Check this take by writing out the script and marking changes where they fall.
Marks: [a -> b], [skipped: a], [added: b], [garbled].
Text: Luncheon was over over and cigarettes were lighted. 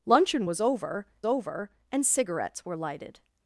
Luncheon was over over and cigarettes were lighted.